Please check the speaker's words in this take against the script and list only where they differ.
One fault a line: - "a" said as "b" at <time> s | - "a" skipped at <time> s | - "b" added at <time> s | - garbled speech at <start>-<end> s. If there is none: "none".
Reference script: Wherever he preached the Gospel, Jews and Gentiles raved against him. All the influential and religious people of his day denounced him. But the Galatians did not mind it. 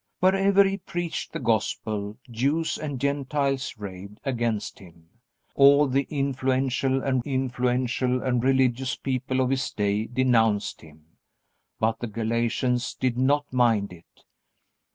- "influential and" added at 7.2 s